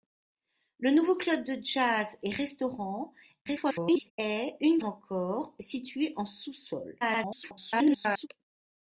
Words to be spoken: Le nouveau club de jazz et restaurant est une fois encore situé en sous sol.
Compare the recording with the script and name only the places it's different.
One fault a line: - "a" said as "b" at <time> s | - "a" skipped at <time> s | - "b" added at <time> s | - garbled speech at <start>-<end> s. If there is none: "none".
- garbled speech at 3.5-4.1 s
- "fois" skipped at 4.8 s
- garbled speech at 7.0-8.3 s